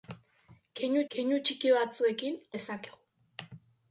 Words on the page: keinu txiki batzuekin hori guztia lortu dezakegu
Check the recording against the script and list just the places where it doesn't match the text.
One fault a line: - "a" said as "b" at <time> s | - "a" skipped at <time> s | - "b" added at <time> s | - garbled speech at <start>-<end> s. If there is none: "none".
- "keinu" added at 1.1 s
- "hori guztia lortu" skipped at 2.4 s